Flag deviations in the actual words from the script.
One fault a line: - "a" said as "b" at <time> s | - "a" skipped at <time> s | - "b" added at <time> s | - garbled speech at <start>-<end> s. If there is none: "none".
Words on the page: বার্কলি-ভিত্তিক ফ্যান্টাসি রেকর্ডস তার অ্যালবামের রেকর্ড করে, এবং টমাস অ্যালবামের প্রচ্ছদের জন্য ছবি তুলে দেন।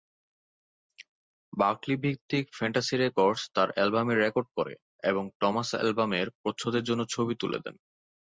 none